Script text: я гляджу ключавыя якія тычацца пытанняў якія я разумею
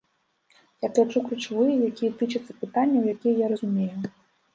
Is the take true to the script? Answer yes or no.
yes